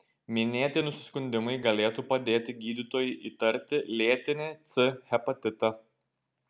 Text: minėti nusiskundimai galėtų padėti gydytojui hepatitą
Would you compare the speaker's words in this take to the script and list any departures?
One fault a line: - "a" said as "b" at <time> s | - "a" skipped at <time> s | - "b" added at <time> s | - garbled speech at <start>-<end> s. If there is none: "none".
- "įtarti lėtinį c" added at 3.3 s